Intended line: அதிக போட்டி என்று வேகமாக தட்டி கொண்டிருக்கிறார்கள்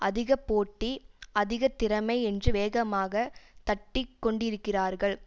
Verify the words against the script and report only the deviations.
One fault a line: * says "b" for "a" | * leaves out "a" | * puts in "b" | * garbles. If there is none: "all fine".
* puts in "அதிக திறமை"